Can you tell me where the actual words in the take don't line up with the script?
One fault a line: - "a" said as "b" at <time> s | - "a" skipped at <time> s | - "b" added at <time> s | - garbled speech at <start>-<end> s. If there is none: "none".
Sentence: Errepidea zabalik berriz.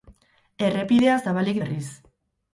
none